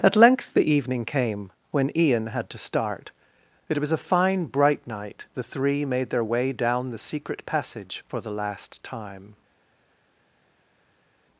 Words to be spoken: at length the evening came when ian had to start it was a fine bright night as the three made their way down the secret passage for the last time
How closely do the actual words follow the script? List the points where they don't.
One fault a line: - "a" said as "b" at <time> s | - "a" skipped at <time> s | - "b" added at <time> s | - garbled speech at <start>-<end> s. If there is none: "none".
- "as" skipped at 5.3 s